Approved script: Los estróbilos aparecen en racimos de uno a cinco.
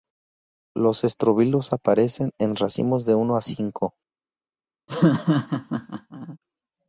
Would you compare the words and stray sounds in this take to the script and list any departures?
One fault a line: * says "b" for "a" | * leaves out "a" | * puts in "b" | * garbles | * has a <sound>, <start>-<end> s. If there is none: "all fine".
* has a laugh, 4.9-6.4 s